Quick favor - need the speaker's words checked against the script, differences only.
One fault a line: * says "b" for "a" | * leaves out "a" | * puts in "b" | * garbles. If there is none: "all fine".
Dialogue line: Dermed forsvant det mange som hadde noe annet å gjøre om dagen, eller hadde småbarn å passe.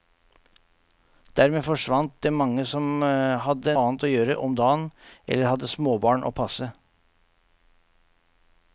* leaves out "noe"